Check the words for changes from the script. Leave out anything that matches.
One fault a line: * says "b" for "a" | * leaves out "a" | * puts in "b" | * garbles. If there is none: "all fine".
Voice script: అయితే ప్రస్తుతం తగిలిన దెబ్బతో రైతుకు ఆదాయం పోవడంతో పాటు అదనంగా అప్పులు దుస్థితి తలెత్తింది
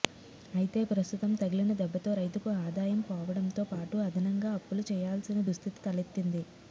* puts in "చేయాల్సిన"